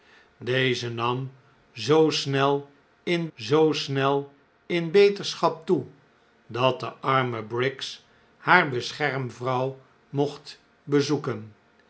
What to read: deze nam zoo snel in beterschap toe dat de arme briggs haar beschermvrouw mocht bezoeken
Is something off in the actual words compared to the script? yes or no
yes